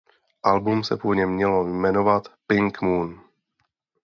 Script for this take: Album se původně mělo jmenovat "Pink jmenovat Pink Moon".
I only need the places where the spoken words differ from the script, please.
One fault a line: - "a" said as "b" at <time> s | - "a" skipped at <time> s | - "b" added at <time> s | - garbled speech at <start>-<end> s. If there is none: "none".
- "jmenovat Pink" skipped at 2.8 s